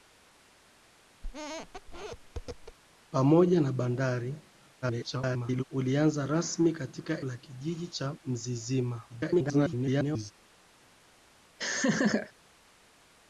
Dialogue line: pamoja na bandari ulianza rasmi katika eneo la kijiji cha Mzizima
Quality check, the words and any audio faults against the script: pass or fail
fail